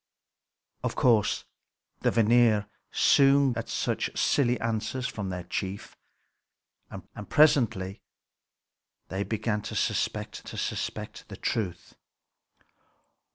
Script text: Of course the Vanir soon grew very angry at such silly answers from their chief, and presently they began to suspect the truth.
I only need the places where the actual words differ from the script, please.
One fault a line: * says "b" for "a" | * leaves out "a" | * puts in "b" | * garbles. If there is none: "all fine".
* leaves out "grew very angry"
* puts in "and"
* puts in "to suspect"